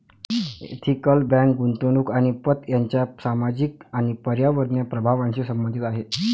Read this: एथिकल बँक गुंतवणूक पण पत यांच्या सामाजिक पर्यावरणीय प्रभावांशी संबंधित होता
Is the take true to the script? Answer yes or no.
no